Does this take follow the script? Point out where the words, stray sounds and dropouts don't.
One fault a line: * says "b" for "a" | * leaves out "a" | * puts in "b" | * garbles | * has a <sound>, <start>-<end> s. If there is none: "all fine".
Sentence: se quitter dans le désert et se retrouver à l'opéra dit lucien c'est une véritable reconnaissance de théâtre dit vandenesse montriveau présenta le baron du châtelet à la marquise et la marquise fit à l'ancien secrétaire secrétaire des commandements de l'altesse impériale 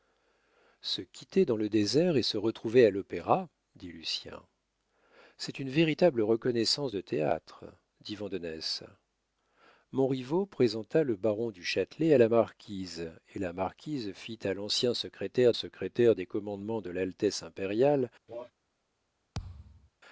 * has a cough, 18.3-18.5 s
* has a thud, 19.3-19.9 s